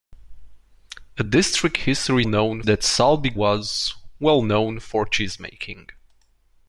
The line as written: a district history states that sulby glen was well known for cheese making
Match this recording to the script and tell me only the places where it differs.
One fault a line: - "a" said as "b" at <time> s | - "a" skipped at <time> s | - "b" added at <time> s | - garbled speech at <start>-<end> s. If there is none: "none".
- "states" said as "known" at 2.3 s
- "glen" skipped at 3.3 s